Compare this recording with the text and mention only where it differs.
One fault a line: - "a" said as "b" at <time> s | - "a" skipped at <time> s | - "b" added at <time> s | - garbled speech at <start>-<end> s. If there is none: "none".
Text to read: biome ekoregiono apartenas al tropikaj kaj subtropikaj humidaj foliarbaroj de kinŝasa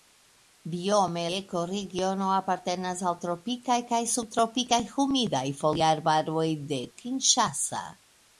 none